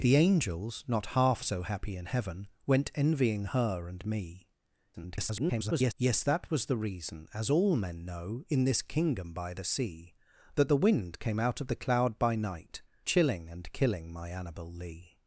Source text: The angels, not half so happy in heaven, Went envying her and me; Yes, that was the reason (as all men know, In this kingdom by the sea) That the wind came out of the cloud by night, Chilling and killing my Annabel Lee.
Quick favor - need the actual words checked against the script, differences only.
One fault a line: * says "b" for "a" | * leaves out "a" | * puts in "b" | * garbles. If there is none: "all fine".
* garbles